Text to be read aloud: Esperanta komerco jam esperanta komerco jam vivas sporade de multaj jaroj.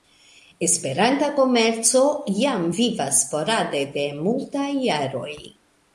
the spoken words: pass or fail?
fail